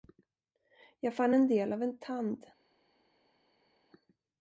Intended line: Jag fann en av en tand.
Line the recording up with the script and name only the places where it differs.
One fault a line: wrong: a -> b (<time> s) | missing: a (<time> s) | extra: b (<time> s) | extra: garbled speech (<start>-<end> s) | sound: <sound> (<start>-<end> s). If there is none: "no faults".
extra: del (1.5 s)